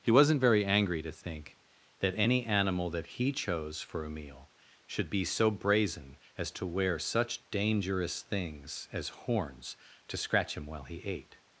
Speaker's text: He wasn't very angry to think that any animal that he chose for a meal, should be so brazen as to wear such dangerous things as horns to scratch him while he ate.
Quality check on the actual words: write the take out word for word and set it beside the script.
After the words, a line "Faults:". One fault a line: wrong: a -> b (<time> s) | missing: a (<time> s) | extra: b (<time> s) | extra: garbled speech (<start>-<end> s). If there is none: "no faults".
He wasn't very angry to think that any animal that he chose for a meal, should be so brazen as to wear such dangerous things as horns to scratch him while he ate.
Faults:
no faults